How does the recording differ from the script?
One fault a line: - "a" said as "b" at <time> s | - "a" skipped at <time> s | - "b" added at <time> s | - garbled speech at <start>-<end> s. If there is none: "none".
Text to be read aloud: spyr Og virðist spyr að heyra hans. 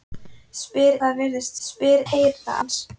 none